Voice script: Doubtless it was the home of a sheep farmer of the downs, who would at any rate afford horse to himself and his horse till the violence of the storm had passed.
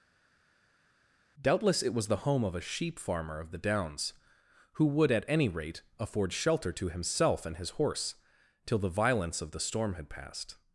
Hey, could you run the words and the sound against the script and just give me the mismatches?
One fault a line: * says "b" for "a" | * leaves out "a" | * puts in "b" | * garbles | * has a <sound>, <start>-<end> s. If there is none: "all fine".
* says "shelter" for "horse"